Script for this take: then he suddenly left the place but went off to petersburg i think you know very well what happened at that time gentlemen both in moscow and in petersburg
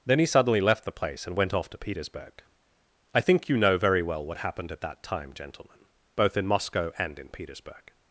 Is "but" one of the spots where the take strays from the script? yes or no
yes